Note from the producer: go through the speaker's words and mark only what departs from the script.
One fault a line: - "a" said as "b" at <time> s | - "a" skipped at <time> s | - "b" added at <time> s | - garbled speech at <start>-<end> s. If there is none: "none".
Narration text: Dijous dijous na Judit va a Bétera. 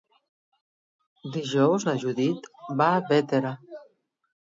- "dijous" skipped at 1.9 s